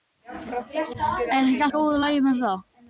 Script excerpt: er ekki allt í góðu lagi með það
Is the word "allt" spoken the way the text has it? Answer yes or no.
no